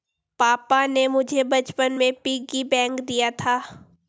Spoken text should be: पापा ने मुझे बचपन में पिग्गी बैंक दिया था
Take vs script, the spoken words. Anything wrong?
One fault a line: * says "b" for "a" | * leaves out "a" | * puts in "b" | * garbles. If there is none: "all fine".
all fine